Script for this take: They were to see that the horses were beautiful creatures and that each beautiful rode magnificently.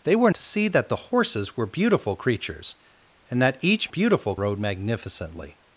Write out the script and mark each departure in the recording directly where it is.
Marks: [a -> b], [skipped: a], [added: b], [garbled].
They were to see that the horses were beautiful creatures and that each beautiful rode magnificently.